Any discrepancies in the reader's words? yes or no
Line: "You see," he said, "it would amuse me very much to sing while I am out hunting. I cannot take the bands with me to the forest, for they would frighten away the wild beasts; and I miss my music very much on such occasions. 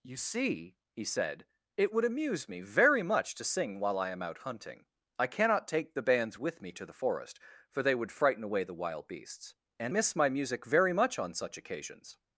yes